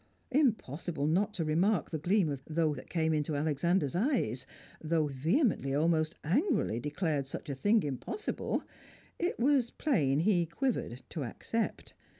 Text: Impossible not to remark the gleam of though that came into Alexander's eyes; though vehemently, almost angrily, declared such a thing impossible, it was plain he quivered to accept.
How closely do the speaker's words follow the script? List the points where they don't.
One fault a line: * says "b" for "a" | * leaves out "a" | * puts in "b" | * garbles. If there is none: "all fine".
all fine